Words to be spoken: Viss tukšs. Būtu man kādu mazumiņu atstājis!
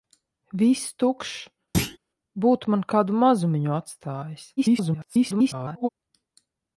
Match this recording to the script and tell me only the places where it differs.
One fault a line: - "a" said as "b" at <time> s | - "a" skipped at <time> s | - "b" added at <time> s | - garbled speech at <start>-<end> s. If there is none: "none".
- garbled speech at 4.6-5.9 s